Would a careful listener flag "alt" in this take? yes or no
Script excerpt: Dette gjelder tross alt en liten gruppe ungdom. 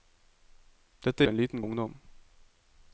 yes